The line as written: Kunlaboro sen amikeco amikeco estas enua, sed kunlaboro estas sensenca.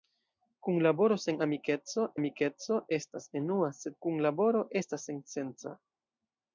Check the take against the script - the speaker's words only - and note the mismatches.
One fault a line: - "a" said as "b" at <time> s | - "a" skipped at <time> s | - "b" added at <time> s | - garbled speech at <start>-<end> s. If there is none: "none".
none